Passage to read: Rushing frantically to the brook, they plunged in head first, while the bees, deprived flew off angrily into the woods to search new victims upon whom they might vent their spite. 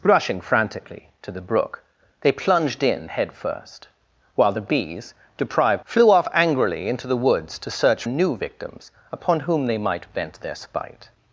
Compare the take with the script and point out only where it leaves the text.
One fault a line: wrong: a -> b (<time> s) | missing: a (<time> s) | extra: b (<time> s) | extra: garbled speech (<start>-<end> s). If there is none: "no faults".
no faults